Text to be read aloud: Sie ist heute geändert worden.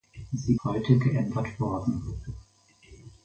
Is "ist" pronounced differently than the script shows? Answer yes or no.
yes